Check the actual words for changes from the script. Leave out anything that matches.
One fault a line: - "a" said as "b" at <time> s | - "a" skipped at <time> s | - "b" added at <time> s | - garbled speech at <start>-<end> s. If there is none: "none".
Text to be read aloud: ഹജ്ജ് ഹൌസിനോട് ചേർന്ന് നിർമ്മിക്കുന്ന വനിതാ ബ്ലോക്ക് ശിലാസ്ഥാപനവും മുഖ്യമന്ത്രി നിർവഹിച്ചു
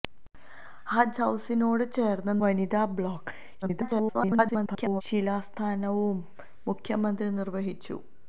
- "നിർമ്മിക്കുന്ന" skipped at 2.4 s
- garbled speech at 3.6-5.0 s